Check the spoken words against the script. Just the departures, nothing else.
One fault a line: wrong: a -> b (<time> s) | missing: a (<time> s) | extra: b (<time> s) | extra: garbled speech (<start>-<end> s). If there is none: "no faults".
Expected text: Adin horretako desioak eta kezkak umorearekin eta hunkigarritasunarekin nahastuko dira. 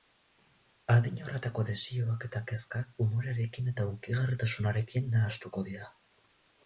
no faults